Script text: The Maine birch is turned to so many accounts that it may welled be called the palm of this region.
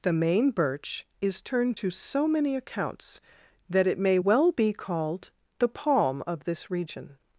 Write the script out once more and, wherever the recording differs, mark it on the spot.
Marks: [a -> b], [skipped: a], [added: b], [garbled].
The Maine birch is turned to so many accounts that it may [welled -> well] be called the palm of this region.